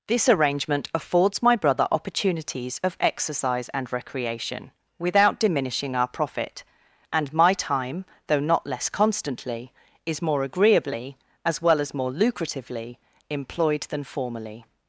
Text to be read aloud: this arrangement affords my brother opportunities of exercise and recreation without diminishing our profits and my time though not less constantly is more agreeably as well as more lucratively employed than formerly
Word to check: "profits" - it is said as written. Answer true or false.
false